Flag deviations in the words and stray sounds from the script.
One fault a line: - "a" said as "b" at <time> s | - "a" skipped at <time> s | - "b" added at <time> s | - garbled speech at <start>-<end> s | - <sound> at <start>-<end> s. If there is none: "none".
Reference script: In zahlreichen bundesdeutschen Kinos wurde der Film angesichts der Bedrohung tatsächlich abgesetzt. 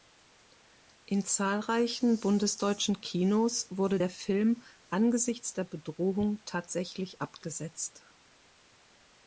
none